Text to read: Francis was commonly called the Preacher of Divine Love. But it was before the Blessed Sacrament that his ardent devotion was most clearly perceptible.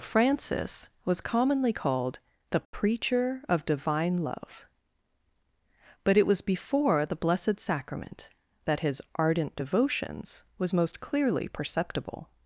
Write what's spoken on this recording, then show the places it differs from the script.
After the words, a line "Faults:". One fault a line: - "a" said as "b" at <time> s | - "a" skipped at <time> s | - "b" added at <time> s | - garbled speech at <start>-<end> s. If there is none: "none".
Francis was commonly called the Preacher of Divine Love. But it was before the Blessed Sacrament that his ardent devotions was most clearly perceptible.
Faults:
- "devotion" said as "devotions" at 9.5 s